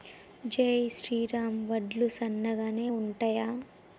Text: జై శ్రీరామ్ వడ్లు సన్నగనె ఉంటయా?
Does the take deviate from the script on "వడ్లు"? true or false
false